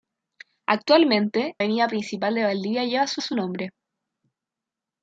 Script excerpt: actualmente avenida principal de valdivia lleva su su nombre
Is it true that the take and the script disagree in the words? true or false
false